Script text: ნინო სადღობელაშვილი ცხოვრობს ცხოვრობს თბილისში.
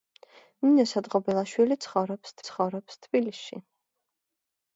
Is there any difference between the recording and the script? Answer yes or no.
no